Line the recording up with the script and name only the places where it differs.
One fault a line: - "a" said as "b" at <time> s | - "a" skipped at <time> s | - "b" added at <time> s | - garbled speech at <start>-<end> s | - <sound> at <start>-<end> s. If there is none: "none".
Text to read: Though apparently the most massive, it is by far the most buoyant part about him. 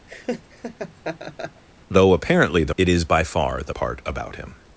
- laugh at 0.1-1.6 s
- "most massive" skipped at 2.7 s
- "most buoyant" skipped at 3.7 s